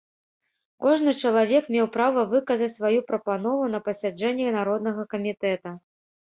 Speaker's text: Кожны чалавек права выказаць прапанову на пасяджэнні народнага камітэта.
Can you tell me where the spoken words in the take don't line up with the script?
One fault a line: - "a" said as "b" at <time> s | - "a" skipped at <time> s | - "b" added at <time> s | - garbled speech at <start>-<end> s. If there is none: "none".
- "меў" added at 1.8 s
- "сваю" added at 2.8 s